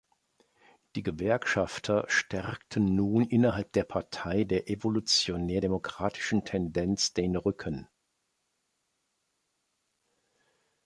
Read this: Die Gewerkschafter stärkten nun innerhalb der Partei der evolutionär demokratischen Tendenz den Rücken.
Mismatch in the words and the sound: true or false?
false